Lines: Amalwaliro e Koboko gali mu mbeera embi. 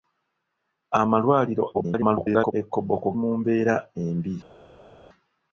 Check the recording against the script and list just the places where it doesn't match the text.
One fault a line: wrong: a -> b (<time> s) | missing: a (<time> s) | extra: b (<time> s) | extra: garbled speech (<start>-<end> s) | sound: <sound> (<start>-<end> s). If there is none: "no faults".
extra: garbled speech (1.7-2.5 s)
missing: gali (3.1 s)